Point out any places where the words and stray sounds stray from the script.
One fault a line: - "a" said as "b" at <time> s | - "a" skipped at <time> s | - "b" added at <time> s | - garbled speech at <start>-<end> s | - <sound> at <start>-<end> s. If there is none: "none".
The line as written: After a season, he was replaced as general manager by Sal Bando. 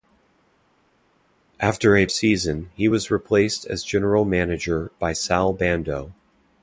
none